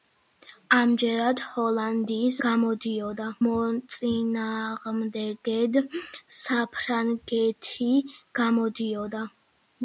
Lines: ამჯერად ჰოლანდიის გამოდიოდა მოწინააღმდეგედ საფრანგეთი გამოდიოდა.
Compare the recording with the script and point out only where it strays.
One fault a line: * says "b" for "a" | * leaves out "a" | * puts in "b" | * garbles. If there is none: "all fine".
all fine